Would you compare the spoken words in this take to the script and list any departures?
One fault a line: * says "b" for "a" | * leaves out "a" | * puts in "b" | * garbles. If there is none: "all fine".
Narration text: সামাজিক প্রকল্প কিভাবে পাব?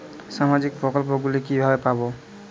* puts in "গুলি"